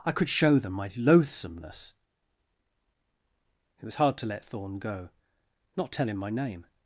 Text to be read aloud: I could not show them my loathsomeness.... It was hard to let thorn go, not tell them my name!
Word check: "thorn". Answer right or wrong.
right